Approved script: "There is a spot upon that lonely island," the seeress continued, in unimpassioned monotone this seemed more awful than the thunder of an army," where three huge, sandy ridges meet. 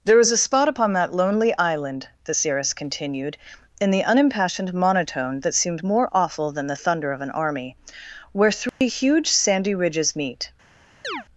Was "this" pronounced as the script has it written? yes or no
no